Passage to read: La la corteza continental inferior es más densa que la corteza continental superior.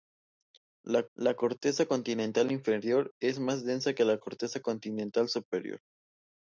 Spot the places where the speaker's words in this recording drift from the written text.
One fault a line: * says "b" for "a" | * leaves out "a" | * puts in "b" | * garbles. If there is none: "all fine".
all fine